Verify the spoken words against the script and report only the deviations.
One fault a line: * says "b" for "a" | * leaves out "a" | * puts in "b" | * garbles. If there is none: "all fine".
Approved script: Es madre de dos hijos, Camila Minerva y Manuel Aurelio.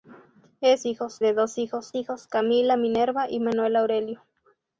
* says "hijos" for "madre"
* puts in "hijos"